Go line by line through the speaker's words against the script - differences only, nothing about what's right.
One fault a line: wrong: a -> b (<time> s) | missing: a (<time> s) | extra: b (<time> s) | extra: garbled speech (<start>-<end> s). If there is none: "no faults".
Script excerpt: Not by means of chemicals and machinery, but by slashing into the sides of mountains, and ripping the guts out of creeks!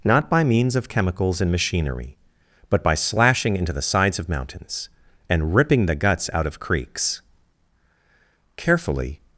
extra: Carefully (8.5 s)